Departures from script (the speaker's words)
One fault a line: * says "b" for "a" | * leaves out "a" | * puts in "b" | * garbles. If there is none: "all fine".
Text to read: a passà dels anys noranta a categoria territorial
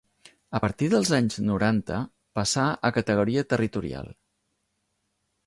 * says "partir" for "passà"
* puts in "passà"